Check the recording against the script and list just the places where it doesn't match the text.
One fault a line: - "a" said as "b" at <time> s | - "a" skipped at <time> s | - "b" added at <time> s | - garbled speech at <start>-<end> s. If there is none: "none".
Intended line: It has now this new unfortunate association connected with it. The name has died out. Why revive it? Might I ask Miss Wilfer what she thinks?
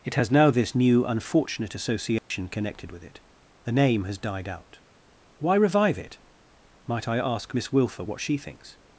none